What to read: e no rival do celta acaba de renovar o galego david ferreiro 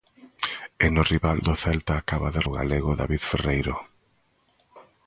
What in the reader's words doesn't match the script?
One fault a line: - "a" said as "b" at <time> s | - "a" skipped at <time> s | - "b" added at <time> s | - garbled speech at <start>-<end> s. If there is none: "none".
- "renovar" skipped at 2.4 s